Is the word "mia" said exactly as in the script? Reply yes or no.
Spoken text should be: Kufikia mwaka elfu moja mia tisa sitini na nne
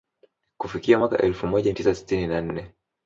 no